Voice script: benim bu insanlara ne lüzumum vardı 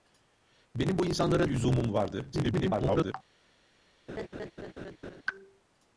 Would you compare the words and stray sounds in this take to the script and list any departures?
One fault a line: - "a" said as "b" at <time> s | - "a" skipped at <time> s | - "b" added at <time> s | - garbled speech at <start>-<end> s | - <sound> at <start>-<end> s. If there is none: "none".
- "ne" skipped at 1.4 s
- garbled speech at 2.3-3.1 s
- laugh at 4.1-5.2 s